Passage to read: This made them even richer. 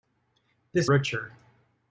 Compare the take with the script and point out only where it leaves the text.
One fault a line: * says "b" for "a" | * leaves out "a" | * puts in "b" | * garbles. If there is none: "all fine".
* leaves out "made them even"